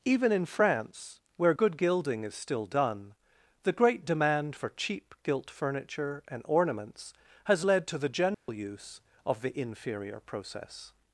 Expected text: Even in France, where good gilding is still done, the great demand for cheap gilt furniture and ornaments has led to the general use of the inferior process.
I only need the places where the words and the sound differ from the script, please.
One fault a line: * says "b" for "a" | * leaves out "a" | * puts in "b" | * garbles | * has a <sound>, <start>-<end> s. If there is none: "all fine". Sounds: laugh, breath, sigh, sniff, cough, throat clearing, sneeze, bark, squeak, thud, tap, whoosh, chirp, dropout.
* has a dropout, 8.3-8.5 s